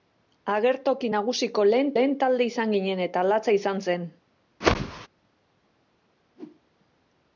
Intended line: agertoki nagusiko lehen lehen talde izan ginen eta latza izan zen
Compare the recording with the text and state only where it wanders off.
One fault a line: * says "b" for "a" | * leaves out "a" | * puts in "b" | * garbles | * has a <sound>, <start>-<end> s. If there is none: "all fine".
* has a whoosh, 4.6-5.1 s
* has a whoosh, 6.3-6.6 s